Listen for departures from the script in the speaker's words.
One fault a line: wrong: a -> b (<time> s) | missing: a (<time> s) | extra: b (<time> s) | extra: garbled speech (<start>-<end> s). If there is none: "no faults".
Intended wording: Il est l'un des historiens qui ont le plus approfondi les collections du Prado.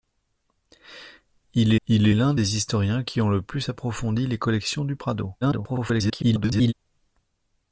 extra: il (1.9 s)
extra: garbled speech (5.4-6.7 s)